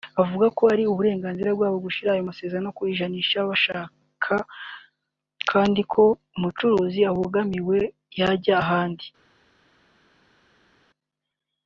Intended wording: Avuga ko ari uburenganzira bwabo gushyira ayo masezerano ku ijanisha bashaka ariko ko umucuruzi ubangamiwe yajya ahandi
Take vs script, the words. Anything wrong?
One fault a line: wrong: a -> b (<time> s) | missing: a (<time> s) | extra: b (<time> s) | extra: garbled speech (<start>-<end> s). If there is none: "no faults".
wrong: ariko -> kandi (5.5 s)